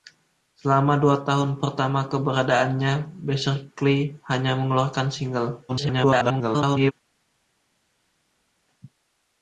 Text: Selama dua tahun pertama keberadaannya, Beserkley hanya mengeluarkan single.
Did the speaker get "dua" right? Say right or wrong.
right